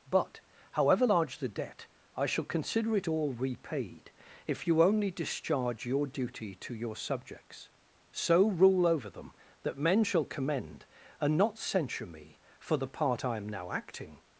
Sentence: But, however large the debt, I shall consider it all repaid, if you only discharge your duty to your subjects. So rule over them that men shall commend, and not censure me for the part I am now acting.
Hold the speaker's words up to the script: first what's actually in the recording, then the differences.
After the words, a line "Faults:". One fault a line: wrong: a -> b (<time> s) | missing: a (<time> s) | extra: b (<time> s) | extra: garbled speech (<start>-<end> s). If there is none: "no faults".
But, however large the debt, I shall consider it all repaid, if you only discharge your duty to your subjects. So rule over them that men shall commend, and not censure me for the part I am now acting.
Faults:
no faults